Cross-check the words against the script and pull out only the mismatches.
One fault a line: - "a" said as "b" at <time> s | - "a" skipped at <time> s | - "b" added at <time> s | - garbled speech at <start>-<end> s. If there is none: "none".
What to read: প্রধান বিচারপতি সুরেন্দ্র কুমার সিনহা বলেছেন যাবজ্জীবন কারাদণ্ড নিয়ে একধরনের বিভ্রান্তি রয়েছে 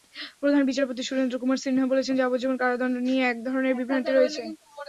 none